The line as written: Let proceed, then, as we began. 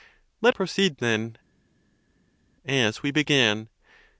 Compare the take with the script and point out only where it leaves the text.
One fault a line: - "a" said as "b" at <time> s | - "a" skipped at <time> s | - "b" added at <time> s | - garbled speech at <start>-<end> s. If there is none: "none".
none